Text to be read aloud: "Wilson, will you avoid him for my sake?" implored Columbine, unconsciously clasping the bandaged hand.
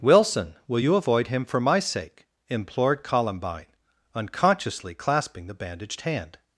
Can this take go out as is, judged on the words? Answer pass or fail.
pass